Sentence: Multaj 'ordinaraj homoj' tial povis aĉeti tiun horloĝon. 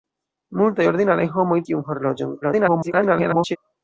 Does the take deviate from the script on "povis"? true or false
true